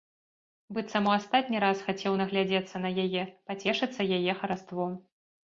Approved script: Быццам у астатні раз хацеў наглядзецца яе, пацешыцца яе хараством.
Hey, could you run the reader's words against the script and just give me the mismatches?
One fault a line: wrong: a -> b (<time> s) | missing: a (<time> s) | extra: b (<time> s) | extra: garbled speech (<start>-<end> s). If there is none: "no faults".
extra: на (2.8 s)